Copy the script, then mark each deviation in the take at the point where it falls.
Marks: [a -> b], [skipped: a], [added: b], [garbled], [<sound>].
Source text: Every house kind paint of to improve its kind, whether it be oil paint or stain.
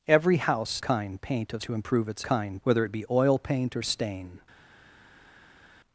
Every house kind paint of to improve its kind, whether it be oil paint or stain.